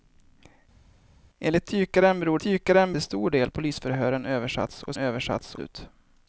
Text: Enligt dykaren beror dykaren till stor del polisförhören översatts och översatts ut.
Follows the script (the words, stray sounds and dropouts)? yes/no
yes